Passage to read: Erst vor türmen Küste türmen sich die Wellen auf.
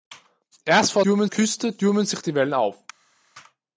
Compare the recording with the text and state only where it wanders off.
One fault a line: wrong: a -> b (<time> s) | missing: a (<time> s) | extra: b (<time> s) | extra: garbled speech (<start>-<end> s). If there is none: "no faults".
no faults